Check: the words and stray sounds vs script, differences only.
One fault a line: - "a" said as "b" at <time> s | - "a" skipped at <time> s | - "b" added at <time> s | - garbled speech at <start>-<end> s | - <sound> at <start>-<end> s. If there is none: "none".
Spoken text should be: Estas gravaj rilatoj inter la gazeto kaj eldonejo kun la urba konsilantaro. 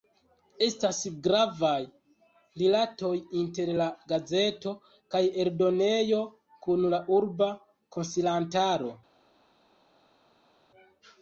none